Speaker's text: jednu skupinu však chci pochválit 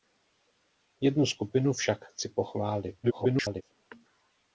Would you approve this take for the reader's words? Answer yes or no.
no